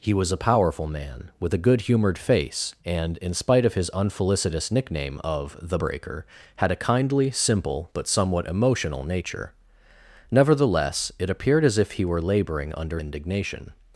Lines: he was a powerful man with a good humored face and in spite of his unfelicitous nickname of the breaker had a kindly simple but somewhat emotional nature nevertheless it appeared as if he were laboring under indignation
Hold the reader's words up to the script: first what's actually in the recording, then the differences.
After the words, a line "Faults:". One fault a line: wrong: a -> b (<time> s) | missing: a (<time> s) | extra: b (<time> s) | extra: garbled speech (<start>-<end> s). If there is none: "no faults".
he was a powerful man with a good humored face and in spite of his unfelicitous nickname of the breaker had a kindly simple but somewhat emotional nature nevertheless it appeared as if he were laboring under indignation
Faults:
no faults